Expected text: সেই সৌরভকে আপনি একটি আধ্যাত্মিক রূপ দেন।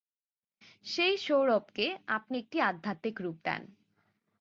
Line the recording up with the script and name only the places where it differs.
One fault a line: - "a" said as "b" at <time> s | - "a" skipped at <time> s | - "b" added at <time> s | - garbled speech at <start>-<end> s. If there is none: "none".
none